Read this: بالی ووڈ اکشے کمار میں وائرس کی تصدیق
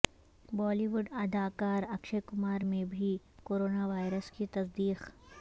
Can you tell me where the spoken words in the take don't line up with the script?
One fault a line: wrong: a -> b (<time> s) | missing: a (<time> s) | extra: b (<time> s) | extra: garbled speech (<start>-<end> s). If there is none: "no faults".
extra: اداکار (1.2 s)
extra: بھی کورونا (2.9 s)